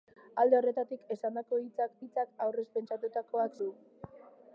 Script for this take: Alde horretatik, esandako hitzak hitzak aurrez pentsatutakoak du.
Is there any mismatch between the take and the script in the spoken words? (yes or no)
no